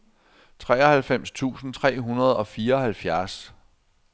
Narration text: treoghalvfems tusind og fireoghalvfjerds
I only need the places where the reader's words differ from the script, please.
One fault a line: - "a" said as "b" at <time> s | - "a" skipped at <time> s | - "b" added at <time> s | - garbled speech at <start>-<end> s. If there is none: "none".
- "tre hundrede" added at 1.7 s